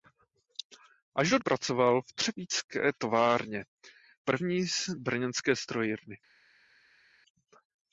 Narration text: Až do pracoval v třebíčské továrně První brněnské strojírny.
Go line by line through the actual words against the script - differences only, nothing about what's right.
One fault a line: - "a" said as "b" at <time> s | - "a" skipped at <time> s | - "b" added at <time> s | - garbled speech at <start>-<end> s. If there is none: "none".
none